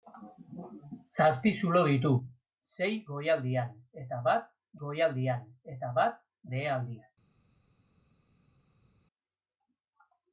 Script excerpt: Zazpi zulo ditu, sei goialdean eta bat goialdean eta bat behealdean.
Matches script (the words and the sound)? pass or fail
pass